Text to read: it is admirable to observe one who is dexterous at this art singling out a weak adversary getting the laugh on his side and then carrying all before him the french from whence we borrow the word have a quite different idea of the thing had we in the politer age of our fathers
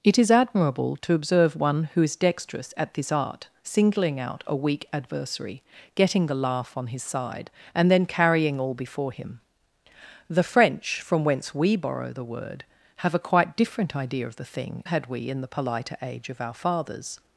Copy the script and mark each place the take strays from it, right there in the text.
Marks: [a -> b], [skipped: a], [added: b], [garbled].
it is admirable to observe one who is dexterous at this art singling out a weak adversary getting the laugh on his side and then carrying all before him the french from whence we borrow the word have a quite different idea of the thing had we in the politer age of our fathers